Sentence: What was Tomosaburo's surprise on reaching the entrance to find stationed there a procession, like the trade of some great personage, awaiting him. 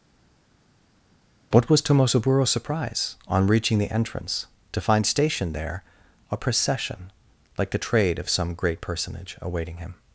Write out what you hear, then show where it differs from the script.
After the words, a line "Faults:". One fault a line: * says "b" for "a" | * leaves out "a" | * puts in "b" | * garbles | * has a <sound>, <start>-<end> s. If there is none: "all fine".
What was Tomosaburo's surprise on reaching the entrance to find stationed there a procession, like the trade of some great personage, awaiting him.
Faults:
all fine